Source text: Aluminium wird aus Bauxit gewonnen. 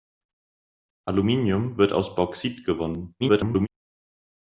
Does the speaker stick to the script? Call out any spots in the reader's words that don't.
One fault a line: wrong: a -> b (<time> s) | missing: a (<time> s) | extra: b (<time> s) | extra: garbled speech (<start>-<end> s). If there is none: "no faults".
extra: garbled speech (3.2-3.7 s)